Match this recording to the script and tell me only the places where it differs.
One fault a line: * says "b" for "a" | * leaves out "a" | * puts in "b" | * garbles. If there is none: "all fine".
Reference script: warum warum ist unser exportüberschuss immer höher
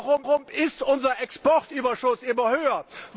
all fine